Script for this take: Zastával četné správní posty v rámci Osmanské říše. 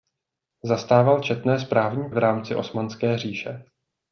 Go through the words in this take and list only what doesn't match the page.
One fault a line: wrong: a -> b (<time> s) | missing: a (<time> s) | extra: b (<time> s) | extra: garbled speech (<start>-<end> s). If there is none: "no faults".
missing: posty (2.1 s)